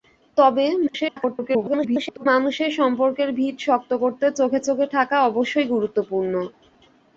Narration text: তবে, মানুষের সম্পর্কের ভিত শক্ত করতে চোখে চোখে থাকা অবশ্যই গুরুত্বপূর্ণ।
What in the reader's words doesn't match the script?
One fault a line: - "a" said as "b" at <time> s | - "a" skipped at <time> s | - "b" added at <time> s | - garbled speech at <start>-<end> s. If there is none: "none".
- garbled speech at 0.9-2.3 s